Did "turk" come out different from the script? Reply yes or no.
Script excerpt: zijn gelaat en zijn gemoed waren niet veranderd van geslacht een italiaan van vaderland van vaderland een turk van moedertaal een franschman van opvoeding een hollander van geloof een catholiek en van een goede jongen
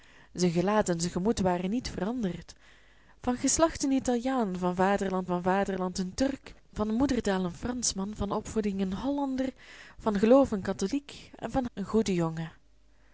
no